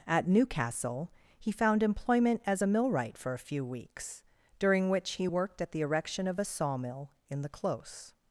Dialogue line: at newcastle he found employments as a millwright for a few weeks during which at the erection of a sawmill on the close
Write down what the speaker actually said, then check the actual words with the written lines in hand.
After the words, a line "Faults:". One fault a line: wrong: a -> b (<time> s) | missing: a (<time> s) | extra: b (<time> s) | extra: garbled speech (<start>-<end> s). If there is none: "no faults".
at newcastle he found employment as a millwright for a few weeks during which he worked at the erection of a sawmill in the close
Faults:
wrong: employments -> employment (1.8 s)
extra: he worked (5.1 s)
wrong: on -> in (7.3 s)